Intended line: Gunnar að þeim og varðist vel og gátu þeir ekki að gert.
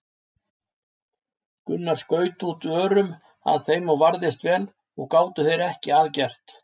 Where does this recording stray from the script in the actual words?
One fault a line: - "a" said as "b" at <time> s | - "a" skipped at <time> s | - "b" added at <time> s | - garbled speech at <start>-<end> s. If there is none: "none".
- "skaut út örum" added at 2.0 s